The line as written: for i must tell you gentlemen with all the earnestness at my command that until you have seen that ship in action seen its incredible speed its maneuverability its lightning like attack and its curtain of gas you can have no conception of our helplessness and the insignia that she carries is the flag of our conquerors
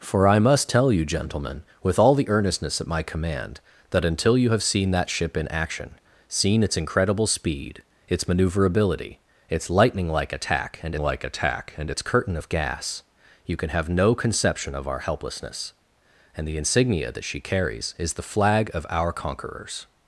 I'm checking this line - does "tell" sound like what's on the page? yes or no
yes